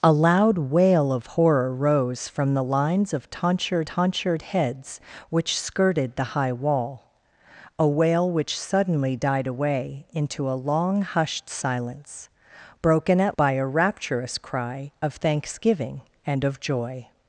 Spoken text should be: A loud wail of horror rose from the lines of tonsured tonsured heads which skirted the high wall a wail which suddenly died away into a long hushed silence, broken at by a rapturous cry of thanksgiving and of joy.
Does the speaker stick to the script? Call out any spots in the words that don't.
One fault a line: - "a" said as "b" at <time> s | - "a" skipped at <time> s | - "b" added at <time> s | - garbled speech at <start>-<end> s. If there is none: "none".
none